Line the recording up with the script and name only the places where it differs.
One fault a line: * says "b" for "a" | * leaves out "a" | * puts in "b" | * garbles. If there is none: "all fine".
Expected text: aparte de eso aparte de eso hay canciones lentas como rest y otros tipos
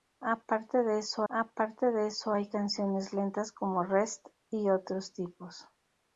all fine